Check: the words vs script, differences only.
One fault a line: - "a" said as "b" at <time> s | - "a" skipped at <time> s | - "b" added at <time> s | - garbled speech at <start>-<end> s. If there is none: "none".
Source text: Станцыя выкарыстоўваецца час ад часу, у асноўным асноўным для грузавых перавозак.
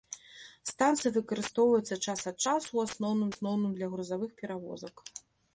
none